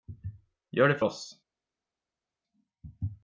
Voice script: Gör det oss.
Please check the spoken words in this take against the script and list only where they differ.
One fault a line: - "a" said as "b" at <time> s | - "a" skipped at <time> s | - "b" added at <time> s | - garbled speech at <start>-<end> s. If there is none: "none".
none